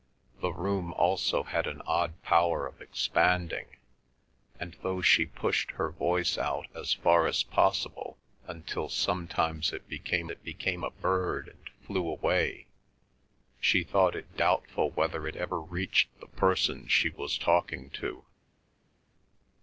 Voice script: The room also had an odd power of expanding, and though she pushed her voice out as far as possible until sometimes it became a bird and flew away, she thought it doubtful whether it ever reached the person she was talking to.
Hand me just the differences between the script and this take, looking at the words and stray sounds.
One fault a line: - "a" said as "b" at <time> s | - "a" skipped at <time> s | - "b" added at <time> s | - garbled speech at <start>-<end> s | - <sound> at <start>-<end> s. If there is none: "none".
- "it became" added at 10.3 s